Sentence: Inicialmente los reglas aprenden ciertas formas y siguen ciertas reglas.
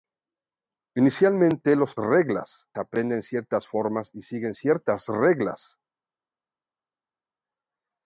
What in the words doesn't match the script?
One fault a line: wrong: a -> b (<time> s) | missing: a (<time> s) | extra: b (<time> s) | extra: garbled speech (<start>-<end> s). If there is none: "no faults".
no faults